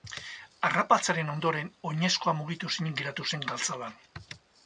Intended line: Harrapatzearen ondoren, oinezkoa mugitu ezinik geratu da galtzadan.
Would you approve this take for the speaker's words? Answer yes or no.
no